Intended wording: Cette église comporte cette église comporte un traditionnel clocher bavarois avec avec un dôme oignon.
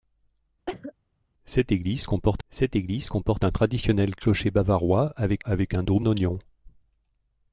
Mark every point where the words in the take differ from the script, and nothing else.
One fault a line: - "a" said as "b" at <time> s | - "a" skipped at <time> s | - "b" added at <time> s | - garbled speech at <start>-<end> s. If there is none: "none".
none